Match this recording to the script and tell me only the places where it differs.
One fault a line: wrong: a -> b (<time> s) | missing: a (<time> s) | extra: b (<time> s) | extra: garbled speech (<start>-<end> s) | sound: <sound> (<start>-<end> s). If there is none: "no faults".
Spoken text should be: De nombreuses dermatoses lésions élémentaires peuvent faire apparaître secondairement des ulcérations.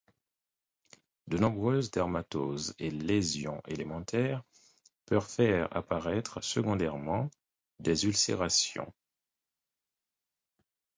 extra: et (2.8 s)